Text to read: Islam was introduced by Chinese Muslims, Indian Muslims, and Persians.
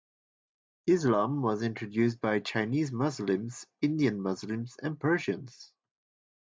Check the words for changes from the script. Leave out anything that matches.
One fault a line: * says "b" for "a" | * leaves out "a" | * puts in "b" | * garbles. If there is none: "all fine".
all fine